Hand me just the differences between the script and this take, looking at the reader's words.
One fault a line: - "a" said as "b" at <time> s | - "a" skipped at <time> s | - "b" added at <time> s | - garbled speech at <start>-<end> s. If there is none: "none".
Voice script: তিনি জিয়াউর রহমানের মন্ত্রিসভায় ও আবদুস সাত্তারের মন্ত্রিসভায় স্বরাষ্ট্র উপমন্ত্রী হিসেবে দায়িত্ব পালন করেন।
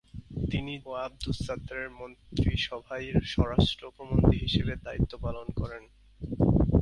- "জিয়াউর রহমানের মন্ত্রিসভায়" skipped at 0.7 s